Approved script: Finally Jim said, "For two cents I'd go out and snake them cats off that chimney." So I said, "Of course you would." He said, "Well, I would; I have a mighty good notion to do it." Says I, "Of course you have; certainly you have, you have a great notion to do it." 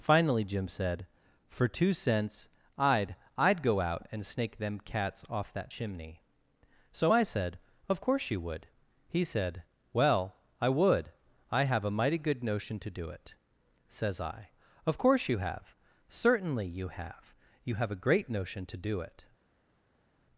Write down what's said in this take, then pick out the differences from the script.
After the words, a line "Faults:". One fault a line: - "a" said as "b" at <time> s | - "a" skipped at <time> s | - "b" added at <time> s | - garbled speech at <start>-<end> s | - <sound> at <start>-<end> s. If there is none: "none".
Finally Jim said, "For two cents I'd I'd go out and snake them cats off that chimney." So I said, "Of course you would." He said, "Well, I would; I have a mighty good notion to do it." Says I, "Of course you have; certainly you have, you have a great notion to do it."
Faults:
- "I'd" added at 3.4 s